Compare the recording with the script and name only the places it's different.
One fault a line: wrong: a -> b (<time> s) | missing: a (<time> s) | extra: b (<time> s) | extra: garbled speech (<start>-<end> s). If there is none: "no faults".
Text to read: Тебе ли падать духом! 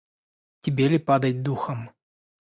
no faults